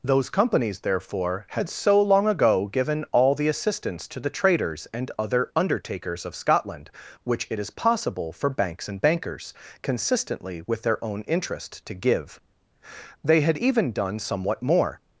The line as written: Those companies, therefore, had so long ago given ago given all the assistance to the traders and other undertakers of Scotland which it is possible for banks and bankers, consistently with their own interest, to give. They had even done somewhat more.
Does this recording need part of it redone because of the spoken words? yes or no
yes